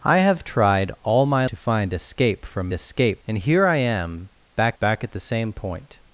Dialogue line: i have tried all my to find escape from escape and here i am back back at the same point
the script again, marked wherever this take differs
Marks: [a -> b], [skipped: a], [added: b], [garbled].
i have tried all my to find escape from escape and here i am back back at the same point